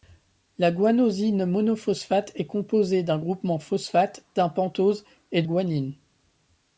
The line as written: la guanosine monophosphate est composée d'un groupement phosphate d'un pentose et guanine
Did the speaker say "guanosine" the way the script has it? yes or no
yes